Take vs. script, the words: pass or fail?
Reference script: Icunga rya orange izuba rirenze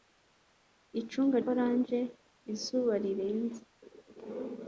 fail